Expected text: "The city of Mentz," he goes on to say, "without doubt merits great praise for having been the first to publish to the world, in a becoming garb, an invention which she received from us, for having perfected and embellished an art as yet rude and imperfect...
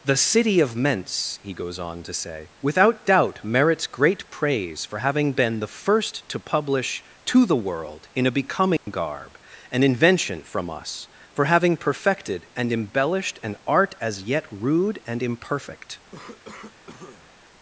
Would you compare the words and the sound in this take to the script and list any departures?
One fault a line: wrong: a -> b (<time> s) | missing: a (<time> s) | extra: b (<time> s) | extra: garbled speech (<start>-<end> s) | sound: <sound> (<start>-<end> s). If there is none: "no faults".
sound: dropout (8.8-8.9 s)
missing: which she received (10.4 s)
sound: cough (16.1-17.4 s)